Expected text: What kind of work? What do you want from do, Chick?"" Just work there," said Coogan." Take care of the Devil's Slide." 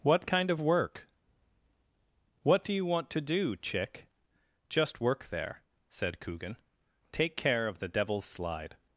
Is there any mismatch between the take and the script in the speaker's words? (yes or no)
yes